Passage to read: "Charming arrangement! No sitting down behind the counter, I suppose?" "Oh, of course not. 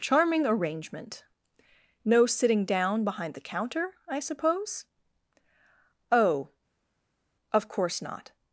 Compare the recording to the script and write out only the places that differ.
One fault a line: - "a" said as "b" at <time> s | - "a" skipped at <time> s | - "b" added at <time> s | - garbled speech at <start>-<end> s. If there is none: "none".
none